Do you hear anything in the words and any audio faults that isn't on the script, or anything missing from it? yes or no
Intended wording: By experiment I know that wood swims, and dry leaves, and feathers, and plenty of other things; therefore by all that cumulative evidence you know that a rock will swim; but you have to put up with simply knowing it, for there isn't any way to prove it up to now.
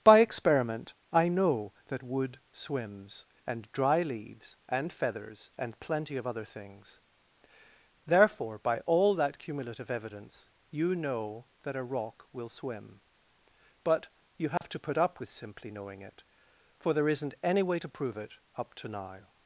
yes